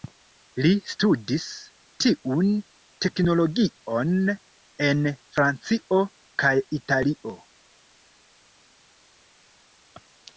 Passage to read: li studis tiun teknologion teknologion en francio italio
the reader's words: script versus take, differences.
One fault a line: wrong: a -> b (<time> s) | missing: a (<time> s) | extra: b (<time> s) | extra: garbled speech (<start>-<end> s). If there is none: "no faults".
missing: teknologion (4.1 s)
extra: kaj (6.5 s)